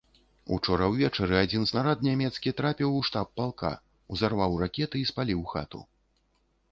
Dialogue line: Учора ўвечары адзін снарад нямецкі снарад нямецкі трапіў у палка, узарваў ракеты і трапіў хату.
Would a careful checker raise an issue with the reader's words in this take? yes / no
yes